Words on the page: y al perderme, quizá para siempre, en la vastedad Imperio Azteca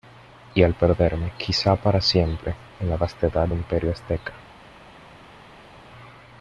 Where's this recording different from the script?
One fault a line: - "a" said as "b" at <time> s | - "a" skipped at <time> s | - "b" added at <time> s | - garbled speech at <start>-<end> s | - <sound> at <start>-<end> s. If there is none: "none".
none